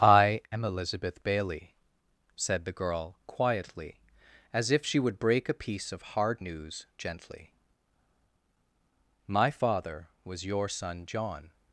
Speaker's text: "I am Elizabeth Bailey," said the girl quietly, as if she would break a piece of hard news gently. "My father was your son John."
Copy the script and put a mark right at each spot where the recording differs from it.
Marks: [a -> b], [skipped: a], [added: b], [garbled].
"I am Elizabeth Bailey," said the girl quietly, as if she would break a piece of hard news gently. "My father was your son John."